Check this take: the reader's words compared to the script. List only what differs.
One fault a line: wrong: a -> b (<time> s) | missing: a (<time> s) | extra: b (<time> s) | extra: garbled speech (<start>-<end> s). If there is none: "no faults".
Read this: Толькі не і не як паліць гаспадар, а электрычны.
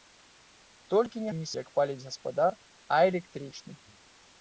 no faults